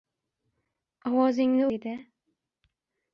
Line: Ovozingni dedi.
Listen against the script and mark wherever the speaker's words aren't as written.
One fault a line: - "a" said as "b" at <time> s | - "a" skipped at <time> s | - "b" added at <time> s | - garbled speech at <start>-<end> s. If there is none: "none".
none